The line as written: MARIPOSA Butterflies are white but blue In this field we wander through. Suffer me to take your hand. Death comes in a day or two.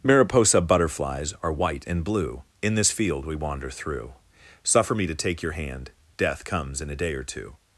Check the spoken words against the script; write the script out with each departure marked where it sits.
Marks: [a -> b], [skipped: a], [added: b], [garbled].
MARIPOSA Butterflies are white [but -> and] blue In this field we wander through. Suffer me to take your hand. Death comes in a day or two.